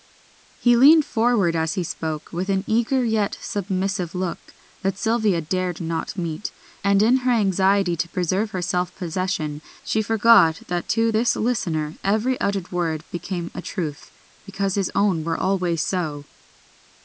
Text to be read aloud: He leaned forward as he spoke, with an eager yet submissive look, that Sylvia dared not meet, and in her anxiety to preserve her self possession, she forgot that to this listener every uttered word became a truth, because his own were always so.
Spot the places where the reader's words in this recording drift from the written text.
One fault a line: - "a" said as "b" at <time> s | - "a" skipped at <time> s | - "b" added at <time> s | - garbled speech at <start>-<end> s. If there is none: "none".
none